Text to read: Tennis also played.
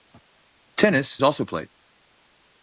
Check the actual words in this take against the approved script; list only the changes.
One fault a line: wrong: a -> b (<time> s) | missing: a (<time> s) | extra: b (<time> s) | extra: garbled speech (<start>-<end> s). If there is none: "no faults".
no faults